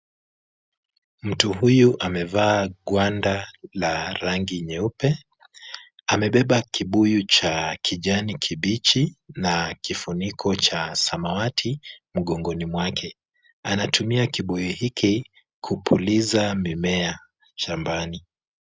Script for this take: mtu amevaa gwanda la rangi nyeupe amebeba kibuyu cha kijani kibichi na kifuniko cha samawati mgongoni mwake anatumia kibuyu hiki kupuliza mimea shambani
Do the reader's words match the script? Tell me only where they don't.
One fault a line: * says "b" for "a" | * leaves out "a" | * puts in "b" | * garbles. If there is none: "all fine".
* puts in "huyu"